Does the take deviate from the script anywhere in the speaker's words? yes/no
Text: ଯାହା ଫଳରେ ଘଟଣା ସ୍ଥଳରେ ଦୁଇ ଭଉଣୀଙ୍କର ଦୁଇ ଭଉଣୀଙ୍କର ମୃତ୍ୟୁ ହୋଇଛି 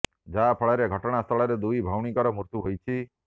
yes